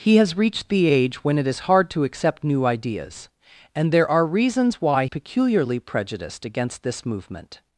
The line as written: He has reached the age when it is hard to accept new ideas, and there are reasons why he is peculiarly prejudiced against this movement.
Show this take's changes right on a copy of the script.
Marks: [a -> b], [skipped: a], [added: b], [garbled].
He has reached the age when it is hard to accept new ideas, and there are reasons why [skipped: he is] peculiarly prejudiced against this movement.